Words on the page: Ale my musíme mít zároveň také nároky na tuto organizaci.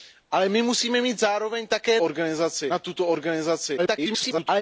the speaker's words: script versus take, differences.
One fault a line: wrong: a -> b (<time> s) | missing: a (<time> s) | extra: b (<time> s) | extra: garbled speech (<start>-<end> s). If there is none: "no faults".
wrong: nároky -> organizaci (2.0 s)
extra: garbled speech (3.8-4.6 s)